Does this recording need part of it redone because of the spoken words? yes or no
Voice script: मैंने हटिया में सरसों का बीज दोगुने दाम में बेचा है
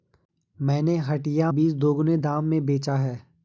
yes